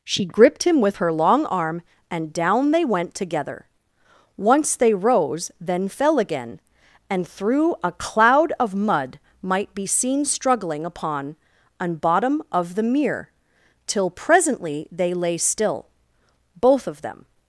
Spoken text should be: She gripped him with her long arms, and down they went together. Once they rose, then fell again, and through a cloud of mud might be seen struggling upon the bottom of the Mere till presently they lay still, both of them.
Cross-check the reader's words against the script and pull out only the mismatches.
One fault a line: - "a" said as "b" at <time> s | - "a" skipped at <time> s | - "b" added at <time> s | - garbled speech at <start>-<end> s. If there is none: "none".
- "arms" said as "arm" at 1.5 s
- "the" said as "an" at 11.8 s